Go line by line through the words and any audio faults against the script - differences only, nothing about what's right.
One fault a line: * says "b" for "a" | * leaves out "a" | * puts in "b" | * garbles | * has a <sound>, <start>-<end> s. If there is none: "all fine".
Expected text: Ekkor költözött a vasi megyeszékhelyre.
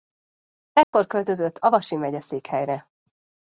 * has a dropout, 0.8-0.9 s